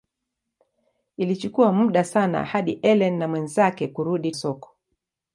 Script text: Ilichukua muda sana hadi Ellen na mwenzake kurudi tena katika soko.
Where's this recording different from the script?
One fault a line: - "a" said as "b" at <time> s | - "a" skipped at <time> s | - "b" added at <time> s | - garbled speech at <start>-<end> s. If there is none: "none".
- "tena katika" skipped at 4.3 s